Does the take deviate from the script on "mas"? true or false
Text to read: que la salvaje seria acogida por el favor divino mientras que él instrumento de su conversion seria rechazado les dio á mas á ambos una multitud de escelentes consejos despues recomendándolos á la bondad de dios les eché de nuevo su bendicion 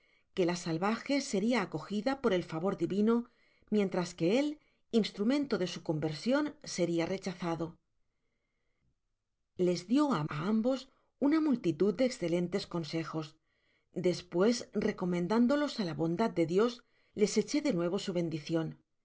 true